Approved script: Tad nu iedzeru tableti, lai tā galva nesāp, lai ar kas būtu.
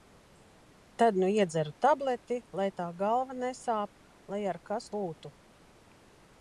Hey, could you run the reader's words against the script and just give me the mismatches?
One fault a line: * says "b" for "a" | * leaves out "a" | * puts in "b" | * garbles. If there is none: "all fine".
all fine